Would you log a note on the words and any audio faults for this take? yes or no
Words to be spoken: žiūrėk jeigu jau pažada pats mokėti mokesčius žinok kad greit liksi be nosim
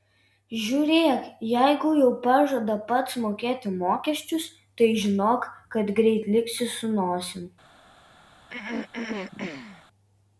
yes